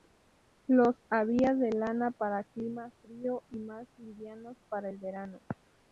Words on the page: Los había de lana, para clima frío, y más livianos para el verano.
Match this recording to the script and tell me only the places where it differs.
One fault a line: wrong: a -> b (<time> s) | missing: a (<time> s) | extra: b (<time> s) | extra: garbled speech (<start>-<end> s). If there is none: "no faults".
no faults